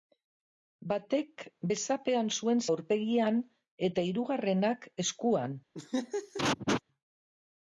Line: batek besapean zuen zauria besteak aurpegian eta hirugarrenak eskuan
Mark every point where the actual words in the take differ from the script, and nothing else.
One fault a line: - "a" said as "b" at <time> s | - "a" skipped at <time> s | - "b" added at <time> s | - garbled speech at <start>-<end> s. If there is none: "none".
- "zauria besteak" skipped at 2.6 s